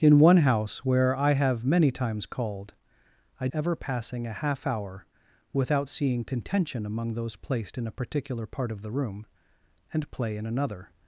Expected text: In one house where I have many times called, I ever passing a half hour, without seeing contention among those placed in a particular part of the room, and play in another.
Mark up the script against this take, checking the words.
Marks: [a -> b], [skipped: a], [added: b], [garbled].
In one house where I have many times called, I ever passing a half hour, without seeing contention among those placed in a particular part of the room, and play in another.